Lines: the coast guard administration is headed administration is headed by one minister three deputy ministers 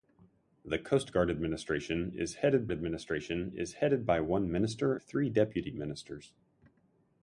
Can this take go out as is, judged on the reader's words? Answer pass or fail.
pass